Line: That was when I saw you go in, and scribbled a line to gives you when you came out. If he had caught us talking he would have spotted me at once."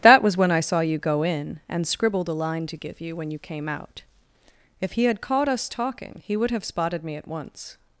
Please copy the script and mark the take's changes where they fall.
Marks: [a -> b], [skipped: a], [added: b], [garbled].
That was when I saw you go in, and scribbled a line to [gives -> give] you when you came out. If he had caught us talking he would have spotted me at once."